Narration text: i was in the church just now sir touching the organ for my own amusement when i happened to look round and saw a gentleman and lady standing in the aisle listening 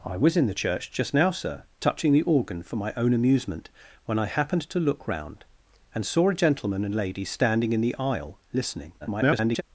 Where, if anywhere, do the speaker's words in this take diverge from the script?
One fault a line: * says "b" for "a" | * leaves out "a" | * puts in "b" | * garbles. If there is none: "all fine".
* garbles